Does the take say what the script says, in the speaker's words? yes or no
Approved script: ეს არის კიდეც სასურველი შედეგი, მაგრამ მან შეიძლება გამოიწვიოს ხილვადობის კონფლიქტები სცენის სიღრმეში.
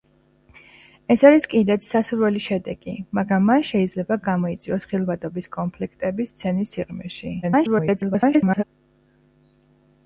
no